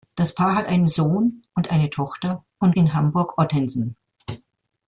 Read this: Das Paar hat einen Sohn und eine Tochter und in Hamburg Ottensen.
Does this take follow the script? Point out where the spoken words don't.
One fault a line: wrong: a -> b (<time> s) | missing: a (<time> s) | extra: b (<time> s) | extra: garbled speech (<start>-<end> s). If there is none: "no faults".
no faults